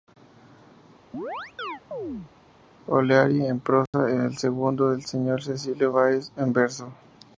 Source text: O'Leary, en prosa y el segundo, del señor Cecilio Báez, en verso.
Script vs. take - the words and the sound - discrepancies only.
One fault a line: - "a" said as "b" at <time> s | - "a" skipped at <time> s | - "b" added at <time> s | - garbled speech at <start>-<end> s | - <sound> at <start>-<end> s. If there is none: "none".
- chirp at 1.1-2.3 s
- dropout at 3.9-3.9 s